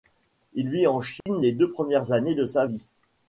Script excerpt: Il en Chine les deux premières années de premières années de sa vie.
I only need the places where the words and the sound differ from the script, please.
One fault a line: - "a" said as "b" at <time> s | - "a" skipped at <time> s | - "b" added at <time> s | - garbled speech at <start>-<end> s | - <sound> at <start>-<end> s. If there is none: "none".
- "vit" added at 0.7 s
- dropout at 1.2-1.3 s
- "premières années de" skipped at 2.5 s